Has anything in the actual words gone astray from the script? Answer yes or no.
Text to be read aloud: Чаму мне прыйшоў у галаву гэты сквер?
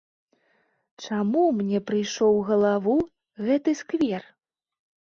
no